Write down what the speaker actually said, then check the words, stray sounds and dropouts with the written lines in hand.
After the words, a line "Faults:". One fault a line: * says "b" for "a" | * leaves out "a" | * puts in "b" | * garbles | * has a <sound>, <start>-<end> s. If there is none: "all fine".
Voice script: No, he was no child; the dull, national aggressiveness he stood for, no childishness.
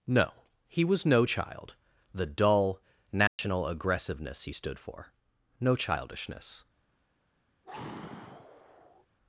No, he was no child; the dull, national aggressiveness he stood for, no childishness.
Faults:
* has a dropout, 3.3-3.4 s
* has a sigh, 7.6-9.1 s